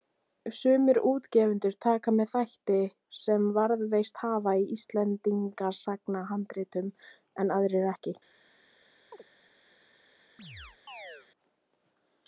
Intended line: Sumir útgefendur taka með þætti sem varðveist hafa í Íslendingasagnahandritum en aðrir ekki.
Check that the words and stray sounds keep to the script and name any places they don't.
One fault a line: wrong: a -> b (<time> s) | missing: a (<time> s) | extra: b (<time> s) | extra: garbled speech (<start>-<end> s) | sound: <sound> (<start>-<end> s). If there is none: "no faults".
sound: chirp (9.1-9.2 s)
sound: chirp (10.4-11.3 s)